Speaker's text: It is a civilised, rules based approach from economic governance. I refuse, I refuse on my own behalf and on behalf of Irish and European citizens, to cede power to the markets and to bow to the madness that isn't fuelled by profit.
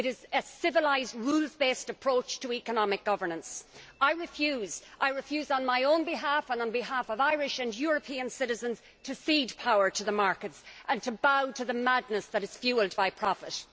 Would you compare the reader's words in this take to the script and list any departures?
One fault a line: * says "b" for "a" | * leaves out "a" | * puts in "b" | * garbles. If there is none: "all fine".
* says "to" for "from"
* says "is" for "isn't"